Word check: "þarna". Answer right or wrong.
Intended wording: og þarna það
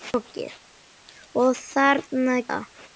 right